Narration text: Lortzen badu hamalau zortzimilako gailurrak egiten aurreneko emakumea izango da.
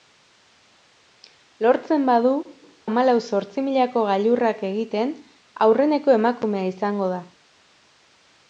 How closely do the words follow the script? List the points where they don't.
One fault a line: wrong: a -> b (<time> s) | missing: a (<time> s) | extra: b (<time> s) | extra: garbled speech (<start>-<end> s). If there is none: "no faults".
no faults